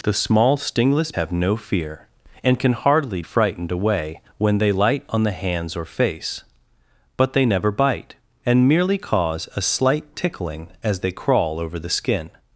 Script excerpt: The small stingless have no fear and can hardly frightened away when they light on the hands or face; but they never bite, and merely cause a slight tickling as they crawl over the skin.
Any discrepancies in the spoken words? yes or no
no